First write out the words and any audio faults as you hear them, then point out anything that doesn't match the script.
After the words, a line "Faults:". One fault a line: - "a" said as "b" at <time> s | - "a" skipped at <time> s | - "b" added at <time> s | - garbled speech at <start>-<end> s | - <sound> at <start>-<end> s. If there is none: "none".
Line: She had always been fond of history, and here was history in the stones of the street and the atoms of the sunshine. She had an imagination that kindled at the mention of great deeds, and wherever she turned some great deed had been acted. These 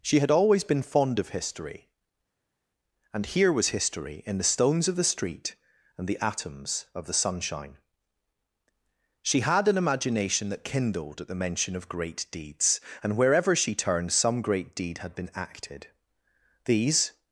She had always been fond of history, and here was history in the stones of the street and the atoms of the sunshine. She had an imagination that kindled at the mention of great deeds, and wherever she turned some great deed had been acted. These
Faults:
none